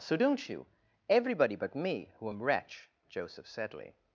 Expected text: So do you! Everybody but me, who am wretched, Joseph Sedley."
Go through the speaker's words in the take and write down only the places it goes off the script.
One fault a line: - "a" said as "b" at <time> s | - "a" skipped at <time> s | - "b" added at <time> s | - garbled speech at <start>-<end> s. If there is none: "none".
- "do" said as "don't" at 0.1 s
- "wretched" said as "wretch" at 2.4 s